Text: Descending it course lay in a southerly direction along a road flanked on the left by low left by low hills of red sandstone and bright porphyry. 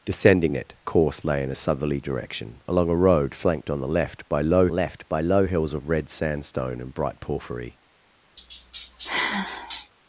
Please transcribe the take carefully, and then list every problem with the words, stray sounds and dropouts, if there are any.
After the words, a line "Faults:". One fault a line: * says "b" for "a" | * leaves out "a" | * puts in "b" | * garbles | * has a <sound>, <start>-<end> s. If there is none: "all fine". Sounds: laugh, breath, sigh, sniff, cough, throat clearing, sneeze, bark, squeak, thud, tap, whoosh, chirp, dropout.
Descending it course lay in a southerly direction along a road flanked on the left by low left by low hills of red sandstone and bright porphyry.
Faults:
* has a sigh, 8.4-9.9 s